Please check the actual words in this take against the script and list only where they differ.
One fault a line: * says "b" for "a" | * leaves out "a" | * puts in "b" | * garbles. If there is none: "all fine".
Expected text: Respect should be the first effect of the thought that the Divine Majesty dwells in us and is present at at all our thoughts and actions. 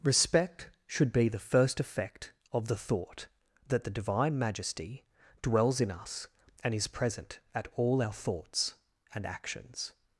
* leaves out "at"